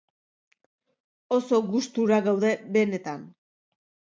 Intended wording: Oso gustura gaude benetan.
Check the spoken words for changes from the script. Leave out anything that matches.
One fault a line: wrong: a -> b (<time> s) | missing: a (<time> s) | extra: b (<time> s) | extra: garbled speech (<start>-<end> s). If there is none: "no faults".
no faults